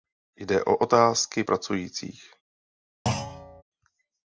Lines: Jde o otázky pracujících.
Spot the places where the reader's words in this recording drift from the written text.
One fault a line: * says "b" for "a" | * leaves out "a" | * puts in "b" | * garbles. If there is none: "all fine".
all fine